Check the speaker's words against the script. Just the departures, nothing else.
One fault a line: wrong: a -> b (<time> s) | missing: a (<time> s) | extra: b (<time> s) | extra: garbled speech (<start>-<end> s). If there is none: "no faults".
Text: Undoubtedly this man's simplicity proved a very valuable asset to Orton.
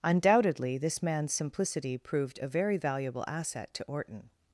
no faults